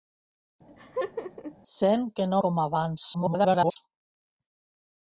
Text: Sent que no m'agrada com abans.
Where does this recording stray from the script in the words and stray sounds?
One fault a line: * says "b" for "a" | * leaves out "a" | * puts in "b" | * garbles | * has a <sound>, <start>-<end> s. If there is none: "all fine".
* has a laugh, 0.7-1.6 s
* leaves out "m'agrada"
* garbles